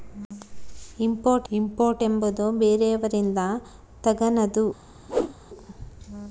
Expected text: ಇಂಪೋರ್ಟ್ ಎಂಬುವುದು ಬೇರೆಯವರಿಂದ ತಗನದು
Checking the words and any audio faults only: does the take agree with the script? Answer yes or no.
no